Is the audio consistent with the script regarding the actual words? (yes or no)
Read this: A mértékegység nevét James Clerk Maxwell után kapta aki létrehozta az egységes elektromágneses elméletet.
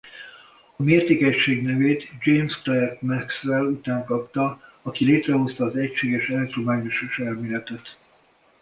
yes